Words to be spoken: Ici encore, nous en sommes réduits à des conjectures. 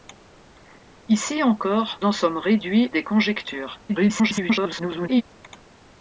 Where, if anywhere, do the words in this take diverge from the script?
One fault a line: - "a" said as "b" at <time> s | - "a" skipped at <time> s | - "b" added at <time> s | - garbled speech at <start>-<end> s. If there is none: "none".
- "nous" skipped at 2.0 s
- "à" skipped at 2.9 s
- garbled speech at 3.9-5.2 s